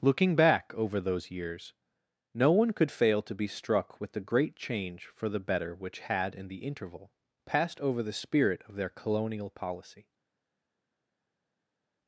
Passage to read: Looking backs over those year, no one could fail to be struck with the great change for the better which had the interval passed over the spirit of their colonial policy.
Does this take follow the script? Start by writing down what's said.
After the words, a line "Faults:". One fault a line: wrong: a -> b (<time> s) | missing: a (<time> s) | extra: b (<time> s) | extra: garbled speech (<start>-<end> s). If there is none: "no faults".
Looking back over those years, no one could fail to be struck with the great change for the better which had in the interval passed over the spirit of their colonial policy.
Faults:
wrong: backs -> back (0.3 s)
wrong: year -> years (1.3 s)
extra: in (6.3 s)